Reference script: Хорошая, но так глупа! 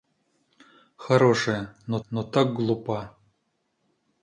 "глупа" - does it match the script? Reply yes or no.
yes